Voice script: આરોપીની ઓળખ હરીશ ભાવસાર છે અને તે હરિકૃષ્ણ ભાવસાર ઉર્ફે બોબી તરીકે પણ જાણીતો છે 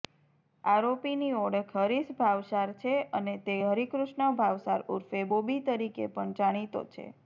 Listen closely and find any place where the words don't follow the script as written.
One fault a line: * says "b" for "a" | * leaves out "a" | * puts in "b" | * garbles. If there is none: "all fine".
all fine